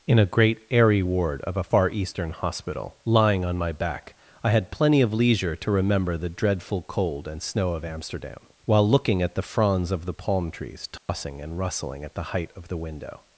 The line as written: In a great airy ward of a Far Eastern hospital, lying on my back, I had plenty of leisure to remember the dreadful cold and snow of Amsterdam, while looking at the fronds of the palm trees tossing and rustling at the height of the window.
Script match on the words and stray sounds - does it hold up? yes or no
no